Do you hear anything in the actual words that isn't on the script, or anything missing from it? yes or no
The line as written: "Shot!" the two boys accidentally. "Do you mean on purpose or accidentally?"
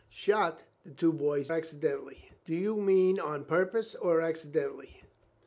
no